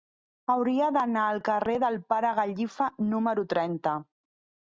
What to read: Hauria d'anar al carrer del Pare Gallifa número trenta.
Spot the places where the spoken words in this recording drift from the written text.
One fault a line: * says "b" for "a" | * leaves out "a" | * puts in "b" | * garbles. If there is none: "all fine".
all fine